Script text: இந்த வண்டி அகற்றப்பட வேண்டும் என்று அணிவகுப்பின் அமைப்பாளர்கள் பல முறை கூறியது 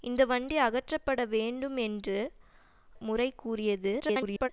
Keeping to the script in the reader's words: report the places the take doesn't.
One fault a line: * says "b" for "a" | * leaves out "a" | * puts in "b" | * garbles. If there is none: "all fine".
* leaves out "அணிவகுப்பின் அமைப்பாளர்கள் பல"
* garbles